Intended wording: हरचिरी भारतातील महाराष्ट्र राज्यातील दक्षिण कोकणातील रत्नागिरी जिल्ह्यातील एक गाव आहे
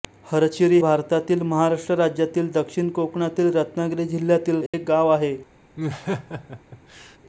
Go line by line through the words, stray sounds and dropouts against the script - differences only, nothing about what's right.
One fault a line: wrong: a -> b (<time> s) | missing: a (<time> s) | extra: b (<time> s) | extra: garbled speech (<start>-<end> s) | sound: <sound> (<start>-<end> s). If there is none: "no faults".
sound: dropout (4.7-4.7 s)
sound: laugh (5.8-7.2 s)